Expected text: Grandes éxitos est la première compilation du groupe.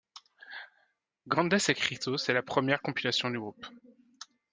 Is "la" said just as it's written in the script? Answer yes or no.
yes